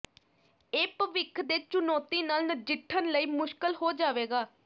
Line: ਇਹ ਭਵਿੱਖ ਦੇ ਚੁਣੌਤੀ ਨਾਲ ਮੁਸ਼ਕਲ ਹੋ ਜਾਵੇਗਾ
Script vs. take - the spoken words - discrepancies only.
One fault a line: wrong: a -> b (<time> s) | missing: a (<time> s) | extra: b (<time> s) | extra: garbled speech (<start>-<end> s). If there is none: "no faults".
extra: ਨਜਿੱਠਣ ਲਈ (2.5 s)